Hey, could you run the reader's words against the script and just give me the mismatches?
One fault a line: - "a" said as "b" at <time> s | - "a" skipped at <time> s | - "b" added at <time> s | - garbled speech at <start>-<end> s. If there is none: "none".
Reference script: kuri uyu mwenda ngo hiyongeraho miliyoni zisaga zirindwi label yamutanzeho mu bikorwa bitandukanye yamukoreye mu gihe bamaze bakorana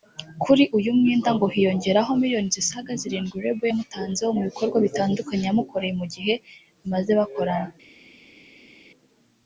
none